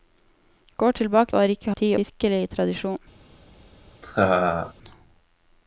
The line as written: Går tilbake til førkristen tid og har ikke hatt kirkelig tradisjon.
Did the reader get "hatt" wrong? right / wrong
wrong